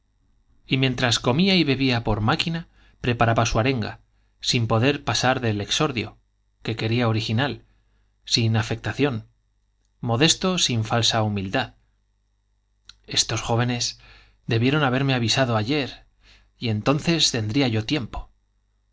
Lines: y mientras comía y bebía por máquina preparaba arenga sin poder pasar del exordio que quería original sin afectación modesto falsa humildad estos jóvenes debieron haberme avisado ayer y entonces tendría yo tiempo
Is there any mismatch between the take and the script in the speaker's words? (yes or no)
yes